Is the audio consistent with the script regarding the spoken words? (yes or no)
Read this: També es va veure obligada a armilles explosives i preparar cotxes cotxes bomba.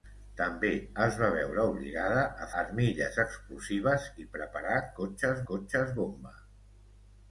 yes